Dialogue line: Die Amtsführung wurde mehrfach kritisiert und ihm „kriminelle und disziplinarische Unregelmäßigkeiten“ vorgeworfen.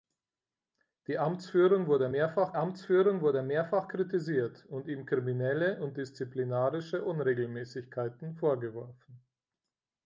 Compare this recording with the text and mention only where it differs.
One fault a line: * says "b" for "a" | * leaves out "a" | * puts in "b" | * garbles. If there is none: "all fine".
* puts in "Amtsführung wurde mehrfach"